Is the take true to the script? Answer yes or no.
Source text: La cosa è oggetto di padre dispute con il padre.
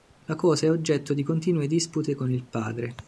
no